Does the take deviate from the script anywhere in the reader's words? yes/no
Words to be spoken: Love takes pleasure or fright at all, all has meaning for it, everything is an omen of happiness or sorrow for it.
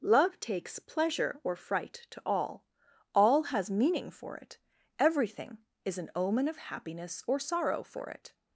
yes